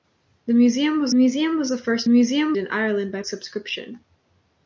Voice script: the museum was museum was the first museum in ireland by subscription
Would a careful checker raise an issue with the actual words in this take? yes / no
no